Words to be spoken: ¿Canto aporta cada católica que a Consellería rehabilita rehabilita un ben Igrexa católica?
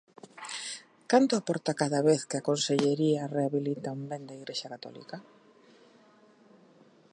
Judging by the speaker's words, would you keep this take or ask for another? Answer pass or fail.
fail